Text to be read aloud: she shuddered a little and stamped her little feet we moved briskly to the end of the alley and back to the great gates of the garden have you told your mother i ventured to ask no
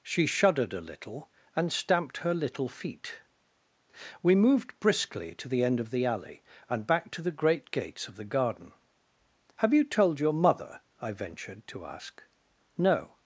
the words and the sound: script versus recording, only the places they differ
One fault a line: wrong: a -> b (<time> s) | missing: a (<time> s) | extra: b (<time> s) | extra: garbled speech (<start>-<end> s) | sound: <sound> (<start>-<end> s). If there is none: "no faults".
no faults